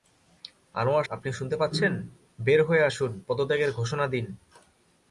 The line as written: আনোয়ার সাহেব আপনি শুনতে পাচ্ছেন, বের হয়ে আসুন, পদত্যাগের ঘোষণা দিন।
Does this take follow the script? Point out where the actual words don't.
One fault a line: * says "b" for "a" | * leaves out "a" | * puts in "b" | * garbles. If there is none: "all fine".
* leaves out "সাহেব"